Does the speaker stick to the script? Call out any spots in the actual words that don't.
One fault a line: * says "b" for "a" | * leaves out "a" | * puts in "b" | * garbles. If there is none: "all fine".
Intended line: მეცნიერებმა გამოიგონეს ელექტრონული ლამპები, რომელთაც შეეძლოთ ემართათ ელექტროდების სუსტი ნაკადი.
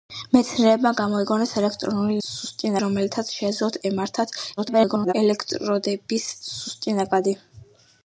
* says "სუსტი" for "ლამპები"
* garbles